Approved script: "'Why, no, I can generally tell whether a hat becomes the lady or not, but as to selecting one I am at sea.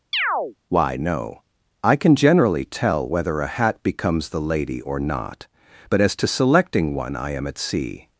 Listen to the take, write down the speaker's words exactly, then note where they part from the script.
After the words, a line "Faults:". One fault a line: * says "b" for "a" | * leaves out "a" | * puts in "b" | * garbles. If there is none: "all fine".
"'Why, no, I can generally tell whether a hat becomes the lady or not, but as to selecting one I am at sea.
Faults:
all fine